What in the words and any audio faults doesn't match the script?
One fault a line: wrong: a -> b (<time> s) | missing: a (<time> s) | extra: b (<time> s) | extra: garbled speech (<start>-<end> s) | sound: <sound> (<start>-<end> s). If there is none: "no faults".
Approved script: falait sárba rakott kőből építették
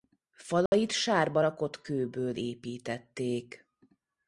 sound: dropout (0.7-0.7 s)